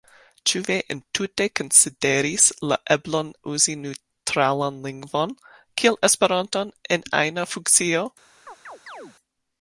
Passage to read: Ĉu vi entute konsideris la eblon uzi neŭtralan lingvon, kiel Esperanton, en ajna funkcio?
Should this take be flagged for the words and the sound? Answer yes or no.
yes